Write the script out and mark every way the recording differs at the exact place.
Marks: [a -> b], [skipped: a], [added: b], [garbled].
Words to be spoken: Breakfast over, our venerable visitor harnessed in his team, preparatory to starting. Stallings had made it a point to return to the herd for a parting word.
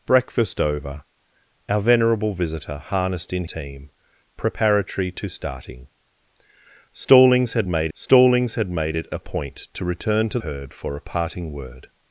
Breakfast over, our venerable visitor harnessed in [skipped: his] team, preparatory to starting. Stallings had made [added: stallings had made] it a point to return to [skipped: the] herd for a parting word.